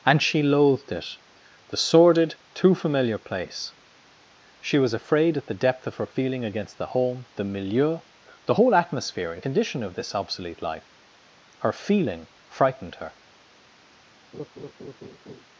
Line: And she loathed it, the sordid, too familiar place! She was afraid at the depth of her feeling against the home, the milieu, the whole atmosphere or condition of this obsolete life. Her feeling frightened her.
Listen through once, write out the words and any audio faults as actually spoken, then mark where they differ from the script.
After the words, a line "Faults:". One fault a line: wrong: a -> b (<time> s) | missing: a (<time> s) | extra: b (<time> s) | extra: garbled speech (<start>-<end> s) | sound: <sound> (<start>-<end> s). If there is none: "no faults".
And she loathed it, the sordid, too familiar place! She was afraid at the depth of her feeling against the home, the milieu, the whole atmosphere and condition of this obsolete life. Her feeling frightened her.
Faults:
wrong: or -> and (9.3 s)
sound: laugh (14.3-15.4 s)